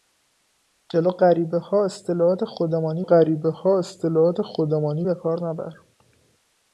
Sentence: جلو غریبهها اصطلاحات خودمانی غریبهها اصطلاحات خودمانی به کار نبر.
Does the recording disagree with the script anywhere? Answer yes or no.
no